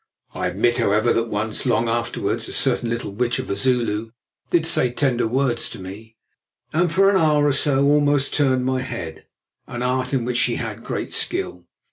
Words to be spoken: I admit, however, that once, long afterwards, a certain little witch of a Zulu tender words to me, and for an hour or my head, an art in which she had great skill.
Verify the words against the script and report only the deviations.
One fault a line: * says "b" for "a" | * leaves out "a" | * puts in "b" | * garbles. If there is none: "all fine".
* puts in "did say"
* puts in "so almost turned"